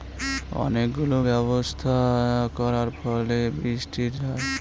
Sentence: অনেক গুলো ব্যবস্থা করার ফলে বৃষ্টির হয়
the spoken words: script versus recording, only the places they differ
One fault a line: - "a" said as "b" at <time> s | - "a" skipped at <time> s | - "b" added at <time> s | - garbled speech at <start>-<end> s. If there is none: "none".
none